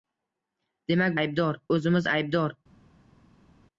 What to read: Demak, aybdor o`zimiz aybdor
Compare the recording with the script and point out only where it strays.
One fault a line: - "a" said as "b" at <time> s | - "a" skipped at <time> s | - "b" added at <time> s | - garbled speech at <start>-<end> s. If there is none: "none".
none